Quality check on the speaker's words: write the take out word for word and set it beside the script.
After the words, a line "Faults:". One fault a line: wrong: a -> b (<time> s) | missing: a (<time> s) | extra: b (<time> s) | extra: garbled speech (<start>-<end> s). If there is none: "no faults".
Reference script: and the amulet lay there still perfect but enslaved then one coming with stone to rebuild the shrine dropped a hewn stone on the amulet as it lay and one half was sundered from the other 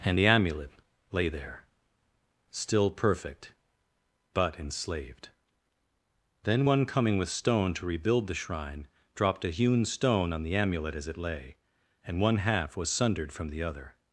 and the amulet lay there still perfect but enslaved then one coming with stone to rebuild the shrine dropped a hewn stone on the amulet as it lay and one half was sundered from the other
Faults:
no faults